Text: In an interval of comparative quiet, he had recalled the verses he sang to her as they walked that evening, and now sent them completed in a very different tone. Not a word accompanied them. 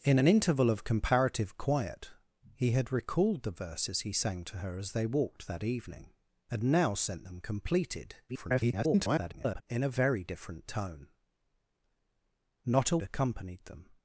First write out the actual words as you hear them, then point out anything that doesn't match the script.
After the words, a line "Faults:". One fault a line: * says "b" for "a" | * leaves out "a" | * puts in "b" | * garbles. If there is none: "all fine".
In an interval of comparative quiet, he had recalled the verses he sang to her as they walked that evening, and now sent them completed [garbled] in a very different tone. Not a accompanied them.
Faults:
* garbles
* leaves out "word"